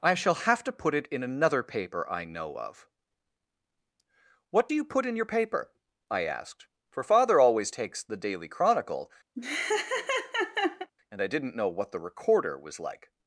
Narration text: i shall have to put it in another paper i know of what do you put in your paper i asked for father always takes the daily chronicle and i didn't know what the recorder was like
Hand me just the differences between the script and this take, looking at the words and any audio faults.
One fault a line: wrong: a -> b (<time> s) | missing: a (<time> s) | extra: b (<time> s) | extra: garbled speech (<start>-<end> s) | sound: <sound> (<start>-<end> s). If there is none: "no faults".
sound: laugh (9.3-10.9 s)